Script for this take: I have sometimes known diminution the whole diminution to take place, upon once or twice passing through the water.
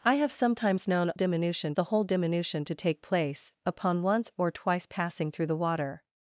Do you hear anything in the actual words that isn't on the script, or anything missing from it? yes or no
no